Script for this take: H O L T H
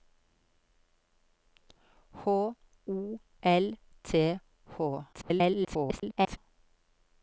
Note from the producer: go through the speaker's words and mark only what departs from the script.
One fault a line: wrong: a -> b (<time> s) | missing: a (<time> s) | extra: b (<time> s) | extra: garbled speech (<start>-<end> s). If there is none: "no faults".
extra: garbled speech (5.1-6.4 s)